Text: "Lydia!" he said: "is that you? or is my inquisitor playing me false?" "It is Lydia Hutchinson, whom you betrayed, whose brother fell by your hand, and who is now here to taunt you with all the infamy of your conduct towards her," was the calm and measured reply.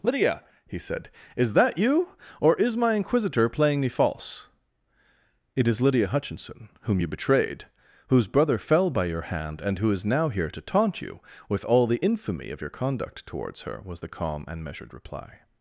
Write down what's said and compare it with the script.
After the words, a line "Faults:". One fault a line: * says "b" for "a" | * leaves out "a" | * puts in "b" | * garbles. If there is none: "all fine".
"Lydia!" he said: "is that you? or is my inquisitor playing me false?" "It is Lydia Hutchinson, whom you betrayed, whose brother fell by your hand, and who is now here to taunt you with all the infamy of your conduct towards her," was the calm and measured reply.
Faults:
all fine